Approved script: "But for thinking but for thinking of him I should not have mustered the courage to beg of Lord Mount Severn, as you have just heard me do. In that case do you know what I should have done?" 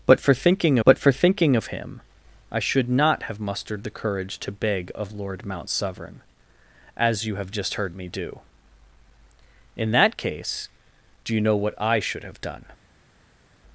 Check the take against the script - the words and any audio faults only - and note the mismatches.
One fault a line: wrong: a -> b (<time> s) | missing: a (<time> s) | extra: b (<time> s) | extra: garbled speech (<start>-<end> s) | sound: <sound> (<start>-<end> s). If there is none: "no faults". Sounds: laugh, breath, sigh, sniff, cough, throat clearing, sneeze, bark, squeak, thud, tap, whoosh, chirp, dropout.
no faults